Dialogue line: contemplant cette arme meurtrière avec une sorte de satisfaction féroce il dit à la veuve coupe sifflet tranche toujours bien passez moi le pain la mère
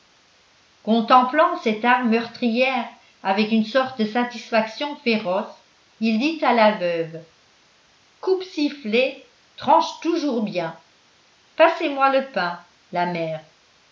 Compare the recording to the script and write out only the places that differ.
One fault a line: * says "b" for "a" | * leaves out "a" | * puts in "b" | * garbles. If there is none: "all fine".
all fine